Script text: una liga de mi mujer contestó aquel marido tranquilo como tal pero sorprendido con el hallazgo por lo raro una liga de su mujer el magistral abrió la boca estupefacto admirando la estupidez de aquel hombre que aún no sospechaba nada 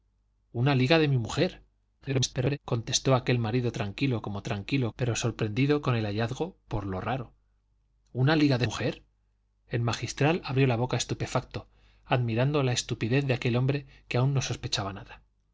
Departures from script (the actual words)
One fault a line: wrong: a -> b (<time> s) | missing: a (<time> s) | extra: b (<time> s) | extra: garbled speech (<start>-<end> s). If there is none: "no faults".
extra: garbled speech (2.0-2.6 s)
wrong: tal -> tranquilo (4.4 s)
missing: su (8.6 s)